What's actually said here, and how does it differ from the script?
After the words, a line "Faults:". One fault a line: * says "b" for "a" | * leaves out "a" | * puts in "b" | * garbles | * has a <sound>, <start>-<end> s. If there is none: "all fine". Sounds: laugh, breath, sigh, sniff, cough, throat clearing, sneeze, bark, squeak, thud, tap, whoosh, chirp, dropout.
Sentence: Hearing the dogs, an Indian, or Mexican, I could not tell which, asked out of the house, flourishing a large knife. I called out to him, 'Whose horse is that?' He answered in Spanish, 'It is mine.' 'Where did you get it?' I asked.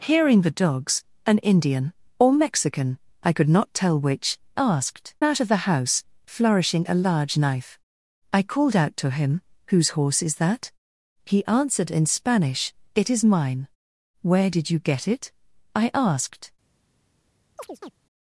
Hearing the dogs, an Indian, or Mexican, I could not tell which, asked out of the house, flourishing a large knife. I called out to him, 'Whose horse is that?' He answered in Spanish, 'It is mine.' 'Where did you get it?' I asked.
Faults:
* has a chirp, 17.6-17.9 s